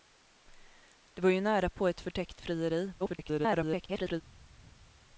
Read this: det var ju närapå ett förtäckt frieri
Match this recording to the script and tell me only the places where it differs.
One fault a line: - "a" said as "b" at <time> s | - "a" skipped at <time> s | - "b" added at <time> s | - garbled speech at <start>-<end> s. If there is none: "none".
- garbled speech at 3.0-4.2 s